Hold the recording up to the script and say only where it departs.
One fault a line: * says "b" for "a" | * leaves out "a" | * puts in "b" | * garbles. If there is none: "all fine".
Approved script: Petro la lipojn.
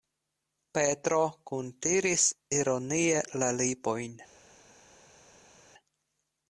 * puts in "kuntiris ironie"